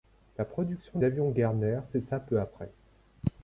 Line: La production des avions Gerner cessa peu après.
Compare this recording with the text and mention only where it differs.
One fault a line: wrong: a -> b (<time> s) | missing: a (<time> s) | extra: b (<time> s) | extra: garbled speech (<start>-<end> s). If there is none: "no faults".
missing: des (1.0 s)